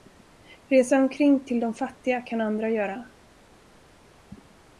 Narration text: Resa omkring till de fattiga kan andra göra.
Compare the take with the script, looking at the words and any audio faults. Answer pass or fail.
pass